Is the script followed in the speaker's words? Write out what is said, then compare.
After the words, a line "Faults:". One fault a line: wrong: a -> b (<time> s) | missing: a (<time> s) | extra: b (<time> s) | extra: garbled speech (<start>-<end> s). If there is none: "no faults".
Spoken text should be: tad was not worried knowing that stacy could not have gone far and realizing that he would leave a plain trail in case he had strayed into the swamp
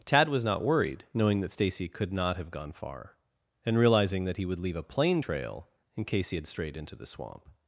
tad was not worried knowing that stacy could not have gone far and realizing that he would leave a plain trail in case he had strayed into the swamp
Faults:
no faults